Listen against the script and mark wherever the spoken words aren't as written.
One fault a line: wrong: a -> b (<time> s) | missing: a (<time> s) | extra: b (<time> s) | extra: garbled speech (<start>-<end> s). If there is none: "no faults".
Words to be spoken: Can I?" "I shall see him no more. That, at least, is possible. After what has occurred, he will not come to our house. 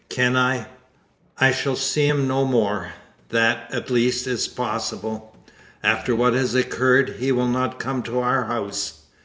no faults